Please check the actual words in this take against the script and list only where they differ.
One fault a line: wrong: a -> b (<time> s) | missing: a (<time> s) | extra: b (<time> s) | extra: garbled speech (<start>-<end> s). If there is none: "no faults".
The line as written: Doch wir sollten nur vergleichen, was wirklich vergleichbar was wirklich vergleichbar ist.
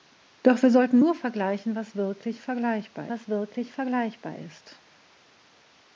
no faults